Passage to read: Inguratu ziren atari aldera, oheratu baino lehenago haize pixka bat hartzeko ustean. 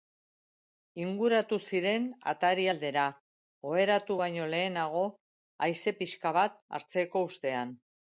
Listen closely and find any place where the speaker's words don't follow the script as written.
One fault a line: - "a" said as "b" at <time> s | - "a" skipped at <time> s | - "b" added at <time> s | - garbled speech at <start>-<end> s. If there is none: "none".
none